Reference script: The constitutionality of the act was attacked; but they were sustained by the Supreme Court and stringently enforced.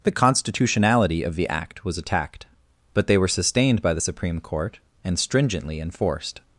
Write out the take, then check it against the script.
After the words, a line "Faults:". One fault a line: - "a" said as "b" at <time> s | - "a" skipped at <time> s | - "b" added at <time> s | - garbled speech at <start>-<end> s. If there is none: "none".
The constitutionality of the act was attacked; but they were sustained by the Supreme Court and stringently enforced.
Faults:
none